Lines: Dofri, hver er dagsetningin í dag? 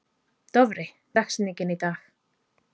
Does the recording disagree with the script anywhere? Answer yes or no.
yes